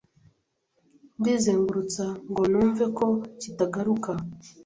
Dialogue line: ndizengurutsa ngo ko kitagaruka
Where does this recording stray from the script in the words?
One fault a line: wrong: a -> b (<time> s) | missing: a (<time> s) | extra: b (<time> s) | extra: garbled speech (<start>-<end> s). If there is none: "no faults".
extra: numve (2.5 s)